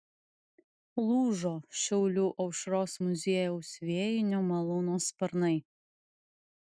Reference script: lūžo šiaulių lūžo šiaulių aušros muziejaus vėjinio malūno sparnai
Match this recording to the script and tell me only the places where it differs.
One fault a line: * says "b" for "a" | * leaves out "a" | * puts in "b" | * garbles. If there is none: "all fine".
* leaves out "lūžo šiaulių"